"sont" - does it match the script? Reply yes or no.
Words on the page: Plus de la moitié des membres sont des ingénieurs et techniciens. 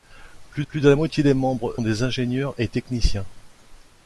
no